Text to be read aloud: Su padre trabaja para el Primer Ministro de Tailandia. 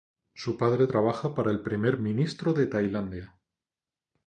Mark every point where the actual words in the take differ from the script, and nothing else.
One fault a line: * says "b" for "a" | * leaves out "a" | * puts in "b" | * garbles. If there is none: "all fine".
all fine